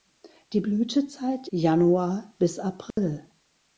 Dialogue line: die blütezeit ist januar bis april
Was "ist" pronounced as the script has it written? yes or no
no